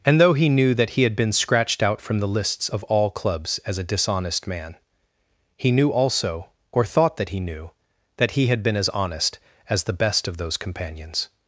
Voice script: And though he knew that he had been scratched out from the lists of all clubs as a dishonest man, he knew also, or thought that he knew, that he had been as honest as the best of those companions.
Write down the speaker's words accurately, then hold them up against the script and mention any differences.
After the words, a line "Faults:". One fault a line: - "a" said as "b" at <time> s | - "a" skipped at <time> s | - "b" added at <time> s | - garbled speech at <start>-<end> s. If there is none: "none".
And though he knew that he had been scratched out from the lists of all clubs as a dishonest man, he knew also, or thought that he knew, that he had been as honest as the best of those companions.
Faults:
none